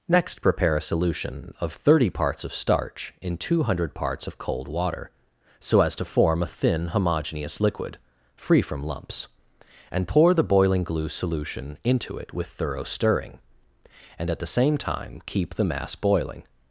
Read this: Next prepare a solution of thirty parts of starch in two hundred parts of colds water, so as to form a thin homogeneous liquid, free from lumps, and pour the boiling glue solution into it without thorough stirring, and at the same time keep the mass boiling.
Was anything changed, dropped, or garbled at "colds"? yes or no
yes